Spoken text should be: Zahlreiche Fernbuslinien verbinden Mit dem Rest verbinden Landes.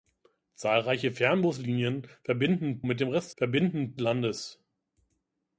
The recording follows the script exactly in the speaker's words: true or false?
true